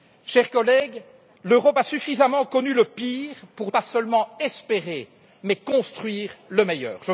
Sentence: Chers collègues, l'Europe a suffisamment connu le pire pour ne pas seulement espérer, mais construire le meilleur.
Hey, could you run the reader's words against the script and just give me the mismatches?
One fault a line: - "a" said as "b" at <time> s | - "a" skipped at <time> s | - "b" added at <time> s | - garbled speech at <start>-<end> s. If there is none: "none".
- "ne" skipped at 3.7 s